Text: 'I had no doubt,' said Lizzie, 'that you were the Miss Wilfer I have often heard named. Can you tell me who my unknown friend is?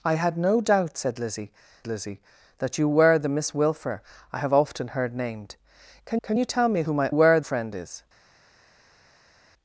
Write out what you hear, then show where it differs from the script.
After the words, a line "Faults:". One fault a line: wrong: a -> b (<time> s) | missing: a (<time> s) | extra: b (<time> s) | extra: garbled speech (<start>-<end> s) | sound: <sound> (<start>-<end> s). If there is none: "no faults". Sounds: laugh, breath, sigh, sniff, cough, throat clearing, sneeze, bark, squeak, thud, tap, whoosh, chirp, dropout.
'I had no doubt,' said Lizzie Lizzie, 'that you were the Miss Wilfer I have often heard named. Can can you tell me who my were friend is?
Faults:
extra: Lizzie (1.9 s)
extra: can (6.2 s)
wrong: unknown -> were (7.1 s)